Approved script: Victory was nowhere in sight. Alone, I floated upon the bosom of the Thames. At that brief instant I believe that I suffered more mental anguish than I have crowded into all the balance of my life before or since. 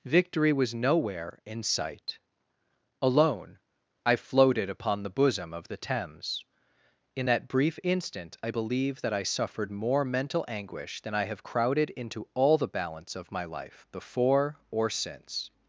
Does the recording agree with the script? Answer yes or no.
no